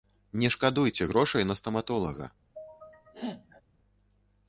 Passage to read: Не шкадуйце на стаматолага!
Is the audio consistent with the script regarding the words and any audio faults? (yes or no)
no